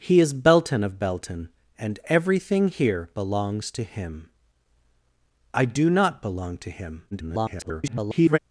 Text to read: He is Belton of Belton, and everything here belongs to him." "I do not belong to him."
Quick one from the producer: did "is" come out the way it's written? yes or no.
yes